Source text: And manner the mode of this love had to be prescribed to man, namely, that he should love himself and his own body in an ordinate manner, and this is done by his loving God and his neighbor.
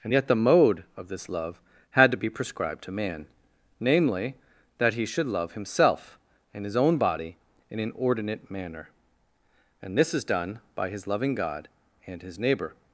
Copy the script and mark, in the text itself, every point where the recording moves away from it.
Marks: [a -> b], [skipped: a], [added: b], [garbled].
And [manner -> yet] the mode of this love had to be prescribed to man, namely, that he should love himself and his own body in an ordinate manner, and this is done by his loving God and his neighbor.